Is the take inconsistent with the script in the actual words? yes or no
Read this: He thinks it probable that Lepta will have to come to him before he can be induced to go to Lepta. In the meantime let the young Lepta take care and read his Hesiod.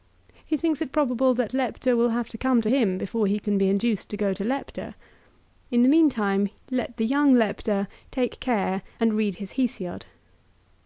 no